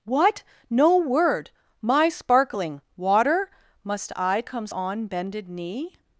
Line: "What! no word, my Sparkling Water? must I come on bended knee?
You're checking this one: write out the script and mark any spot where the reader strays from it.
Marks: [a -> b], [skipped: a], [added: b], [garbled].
"What! no word, my Sparkling Water? must I [come -> comes] on bended knee?